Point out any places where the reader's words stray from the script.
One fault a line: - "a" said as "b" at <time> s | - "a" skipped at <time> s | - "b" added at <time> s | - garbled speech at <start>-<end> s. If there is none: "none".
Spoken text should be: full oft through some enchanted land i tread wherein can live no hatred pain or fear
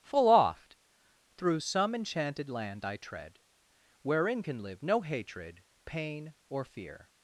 none